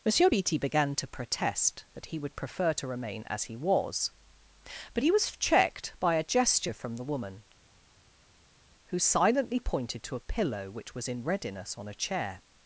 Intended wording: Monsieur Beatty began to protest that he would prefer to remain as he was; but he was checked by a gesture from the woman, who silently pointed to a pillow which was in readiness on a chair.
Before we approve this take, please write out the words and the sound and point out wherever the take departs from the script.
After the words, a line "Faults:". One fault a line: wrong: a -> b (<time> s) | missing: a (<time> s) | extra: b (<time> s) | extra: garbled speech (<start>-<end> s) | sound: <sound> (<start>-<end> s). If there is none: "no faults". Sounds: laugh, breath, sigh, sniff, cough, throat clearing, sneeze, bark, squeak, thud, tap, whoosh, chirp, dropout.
Monsieur Beatty began to protest that he would prefer to remain as he was; but he was checked by a gesture from the woman, who silently pointed to a pillow which was in readiness on a chair.
Faults:
no faults